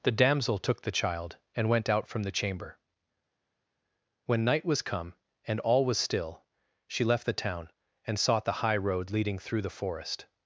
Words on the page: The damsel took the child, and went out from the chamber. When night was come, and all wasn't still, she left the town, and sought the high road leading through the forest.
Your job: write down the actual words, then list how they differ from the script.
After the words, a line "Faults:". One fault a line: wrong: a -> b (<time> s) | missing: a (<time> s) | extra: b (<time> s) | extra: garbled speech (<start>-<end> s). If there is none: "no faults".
The damsel took the child, and went out from the chamber. When night was come, and all was still, she left the town, and sought the high road leading through the forest.
Faults:
wrong: wasn't -> was (5.9 s)